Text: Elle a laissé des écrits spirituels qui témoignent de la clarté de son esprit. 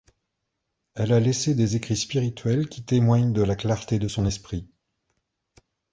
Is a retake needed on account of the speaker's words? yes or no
no